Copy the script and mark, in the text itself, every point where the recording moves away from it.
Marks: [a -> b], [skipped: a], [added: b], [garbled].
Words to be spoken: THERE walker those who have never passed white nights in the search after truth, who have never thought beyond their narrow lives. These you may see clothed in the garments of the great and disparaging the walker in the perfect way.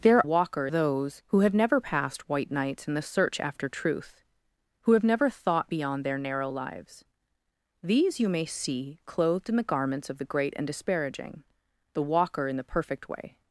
THERE walker those who have never passed white nights in the search after truth, who have never thought beyond their narrow lives. These you may see clothed in the garments of the great and disparaging the walker in the perfect way.